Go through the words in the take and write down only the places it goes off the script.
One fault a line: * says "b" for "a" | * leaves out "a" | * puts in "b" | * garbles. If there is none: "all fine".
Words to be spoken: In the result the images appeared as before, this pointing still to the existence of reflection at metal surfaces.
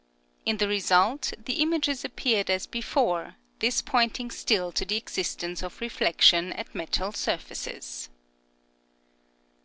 all fine